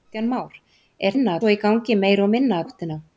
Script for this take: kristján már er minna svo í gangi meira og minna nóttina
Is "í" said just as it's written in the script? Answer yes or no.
yes